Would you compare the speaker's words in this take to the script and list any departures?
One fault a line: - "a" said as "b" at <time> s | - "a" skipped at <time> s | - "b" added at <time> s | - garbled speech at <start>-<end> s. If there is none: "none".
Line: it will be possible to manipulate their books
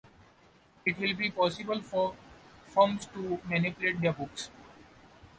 - "for firms" added at 1.8 s